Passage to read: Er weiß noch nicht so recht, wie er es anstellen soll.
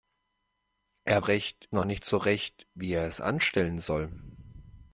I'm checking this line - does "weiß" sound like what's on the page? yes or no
no